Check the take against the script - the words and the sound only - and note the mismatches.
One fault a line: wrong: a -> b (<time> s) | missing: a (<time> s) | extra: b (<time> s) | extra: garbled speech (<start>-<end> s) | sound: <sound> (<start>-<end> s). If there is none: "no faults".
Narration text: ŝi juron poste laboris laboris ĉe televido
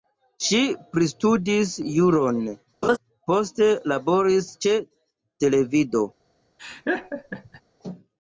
extra: pristudis (0.9 s)
sound: laugh (2.8-3.0 s)
missing: laboris (4.5 s)
sound: laugh (6.6-7.6 s)